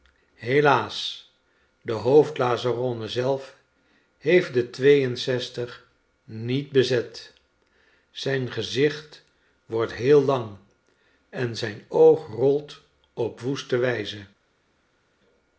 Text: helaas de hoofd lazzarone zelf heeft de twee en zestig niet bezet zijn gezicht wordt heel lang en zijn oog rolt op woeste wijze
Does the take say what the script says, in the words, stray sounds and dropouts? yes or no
yes